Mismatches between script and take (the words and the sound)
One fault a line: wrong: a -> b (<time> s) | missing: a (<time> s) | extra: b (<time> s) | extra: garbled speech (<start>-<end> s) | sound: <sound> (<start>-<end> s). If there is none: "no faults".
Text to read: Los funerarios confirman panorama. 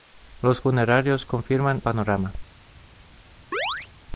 sound: chirp (3.5-3.9 s)